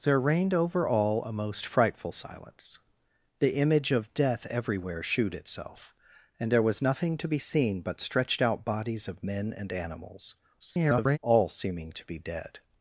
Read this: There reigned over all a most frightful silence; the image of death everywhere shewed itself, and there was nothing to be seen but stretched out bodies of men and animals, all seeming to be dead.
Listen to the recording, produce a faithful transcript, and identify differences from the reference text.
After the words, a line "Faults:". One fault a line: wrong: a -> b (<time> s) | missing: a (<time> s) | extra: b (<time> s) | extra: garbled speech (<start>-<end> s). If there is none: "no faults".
There reigned over all a most frightful silence; the image of death everywhere shewed itself, and there was nothing to be seen but stretched out bodies of men and animals, [garbled] all seeming to be dead.
Faults:
extra: garbled speech (10.6-11.2 s)